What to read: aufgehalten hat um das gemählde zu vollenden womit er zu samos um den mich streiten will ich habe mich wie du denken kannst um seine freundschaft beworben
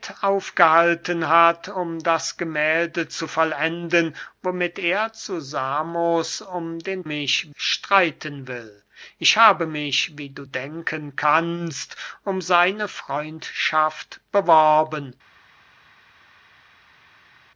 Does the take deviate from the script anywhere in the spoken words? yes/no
no